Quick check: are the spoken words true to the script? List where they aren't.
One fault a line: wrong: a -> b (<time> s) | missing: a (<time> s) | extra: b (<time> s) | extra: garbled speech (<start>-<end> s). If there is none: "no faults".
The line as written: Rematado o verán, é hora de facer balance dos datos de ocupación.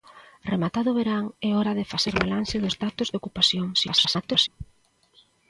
extra: garbled speech (3.7-4.5 s)